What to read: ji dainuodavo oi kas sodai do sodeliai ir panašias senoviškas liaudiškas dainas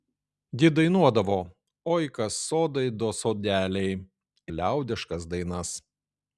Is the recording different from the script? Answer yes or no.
yes